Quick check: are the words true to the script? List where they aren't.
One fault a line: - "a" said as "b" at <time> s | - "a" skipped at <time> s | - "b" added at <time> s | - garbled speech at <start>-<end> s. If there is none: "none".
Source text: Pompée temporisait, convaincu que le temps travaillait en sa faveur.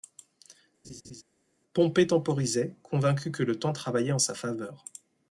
none